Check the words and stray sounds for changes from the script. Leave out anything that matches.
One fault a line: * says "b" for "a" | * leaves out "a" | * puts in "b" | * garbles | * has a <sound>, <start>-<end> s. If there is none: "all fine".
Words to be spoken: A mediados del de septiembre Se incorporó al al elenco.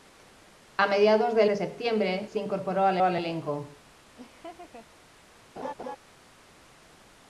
* has a laugh, 4.2-4.9 s
* has a laugh, 5.6-6.0 s